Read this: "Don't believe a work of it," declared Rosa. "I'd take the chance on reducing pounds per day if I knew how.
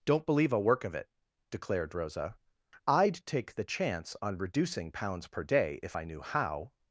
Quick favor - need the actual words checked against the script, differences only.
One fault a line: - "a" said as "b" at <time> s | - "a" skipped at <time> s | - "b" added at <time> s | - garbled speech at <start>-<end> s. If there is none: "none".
none